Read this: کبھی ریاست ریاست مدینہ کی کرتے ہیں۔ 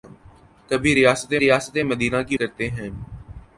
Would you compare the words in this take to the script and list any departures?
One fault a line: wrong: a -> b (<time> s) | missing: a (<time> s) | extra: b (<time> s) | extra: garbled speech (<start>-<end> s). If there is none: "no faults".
no faults